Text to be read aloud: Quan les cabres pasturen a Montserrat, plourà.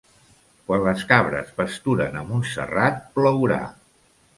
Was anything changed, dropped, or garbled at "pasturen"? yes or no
no